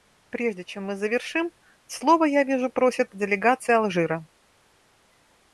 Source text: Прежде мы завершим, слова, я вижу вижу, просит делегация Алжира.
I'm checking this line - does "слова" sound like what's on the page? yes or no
yes